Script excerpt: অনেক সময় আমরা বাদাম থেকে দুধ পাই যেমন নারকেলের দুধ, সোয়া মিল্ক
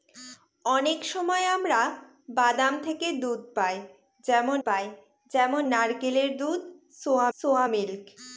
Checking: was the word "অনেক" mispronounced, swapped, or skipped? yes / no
no